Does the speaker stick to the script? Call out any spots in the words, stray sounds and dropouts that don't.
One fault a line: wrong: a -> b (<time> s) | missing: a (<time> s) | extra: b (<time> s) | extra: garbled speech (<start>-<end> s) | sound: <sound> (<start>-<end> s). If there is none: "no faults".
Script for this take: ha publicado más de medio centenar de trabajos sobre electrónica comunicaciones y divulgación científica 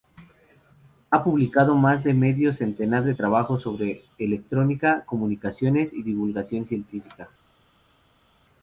no faults